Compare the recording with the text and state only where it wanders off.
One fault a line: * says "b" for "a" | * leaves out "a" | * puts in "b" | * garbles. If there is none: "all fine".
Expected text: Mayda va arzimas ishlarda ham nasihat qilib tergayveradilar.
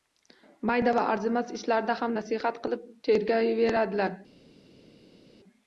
all fine